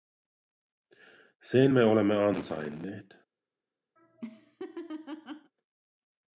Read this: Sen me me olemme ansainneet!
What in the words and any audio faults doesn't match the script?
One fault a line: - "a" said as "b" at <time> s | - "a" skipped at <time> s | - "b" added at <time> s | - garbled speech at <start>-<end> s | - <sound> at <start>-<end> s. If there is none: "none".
- "me" skipped at 1.8 s
- laugh at 4.0-5.5 s